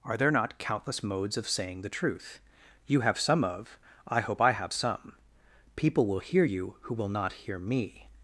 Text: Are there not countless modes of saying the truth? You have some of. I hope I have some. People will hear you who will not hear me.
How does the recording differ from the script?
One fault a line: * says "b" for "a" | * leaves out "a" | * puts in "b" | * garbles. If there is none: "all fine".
all fine